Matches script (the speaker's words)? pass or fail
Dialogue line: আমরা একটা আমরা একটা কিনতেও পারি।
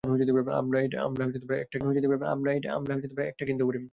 pass